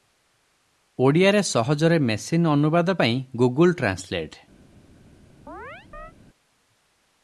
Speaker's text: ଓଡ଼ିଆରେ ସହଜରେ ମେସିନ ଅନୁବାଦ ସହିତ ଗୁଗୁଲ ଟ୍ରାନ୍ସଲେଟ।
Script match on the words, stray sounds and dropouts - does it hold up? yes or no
no